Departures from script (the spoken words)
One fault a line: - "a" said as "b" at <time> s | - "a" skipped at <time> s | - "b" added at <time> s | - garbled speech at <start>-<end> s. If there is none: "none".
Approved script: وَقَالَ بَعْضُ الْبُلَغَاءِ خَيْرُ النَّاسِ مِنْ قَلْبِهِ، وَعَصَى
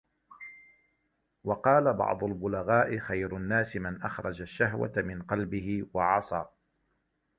- "مَنْ أَخْرَجَ الشَّهْوَةَ" added at 3.8 s